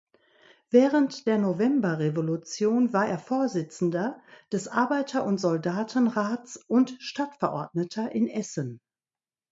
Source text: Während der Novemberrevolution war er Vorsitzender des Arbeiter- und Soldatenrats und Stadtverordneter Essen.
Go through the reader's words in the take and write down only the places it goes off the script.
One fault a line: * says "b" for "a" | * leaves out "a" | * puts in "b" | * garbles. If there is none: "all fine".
* puts in "in"